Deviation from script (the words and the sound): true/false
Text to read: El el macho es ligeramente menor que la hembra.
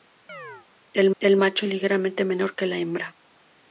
true